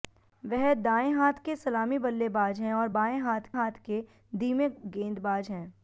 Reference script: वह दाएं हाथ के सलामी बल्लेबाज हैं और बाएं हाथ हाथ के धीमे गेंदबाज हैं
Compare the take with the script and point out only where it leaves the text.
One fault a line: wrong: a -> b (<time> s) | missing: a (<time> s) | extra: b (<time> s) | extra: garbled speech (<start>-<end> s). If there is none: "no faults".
no faults